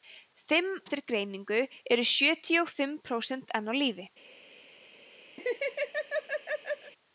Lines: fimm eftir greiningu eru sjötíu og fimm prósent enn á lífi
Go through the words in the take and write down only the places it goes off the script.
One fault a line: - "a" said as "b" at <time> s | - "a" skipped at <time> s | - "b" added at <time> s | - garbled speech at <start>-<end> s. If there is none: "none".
none